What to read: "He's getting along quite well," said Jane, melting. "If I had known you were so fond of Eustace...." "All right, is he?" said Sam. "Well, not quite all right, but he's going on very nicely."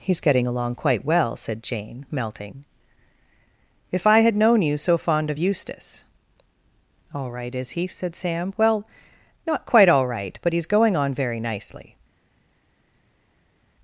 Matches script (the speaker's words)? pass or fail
fail